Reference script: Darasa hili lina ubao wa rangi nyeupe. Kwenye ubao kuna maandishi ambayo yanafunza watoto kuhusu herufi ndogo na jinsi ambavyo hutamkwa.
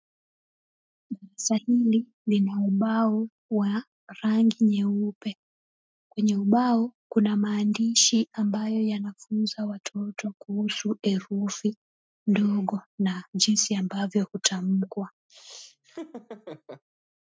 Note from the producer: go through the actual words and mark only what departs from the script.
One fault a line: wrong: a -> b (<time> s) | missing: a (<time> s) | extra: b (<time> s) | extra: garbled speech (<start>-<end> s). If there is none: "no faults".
no faults